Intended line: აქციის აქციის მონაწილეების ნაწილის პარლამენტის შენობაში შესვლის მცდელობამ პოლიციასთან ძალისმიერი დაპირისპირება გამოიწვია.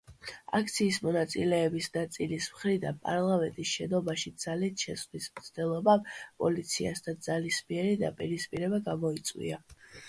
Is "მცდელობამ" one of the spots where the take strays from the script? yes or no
no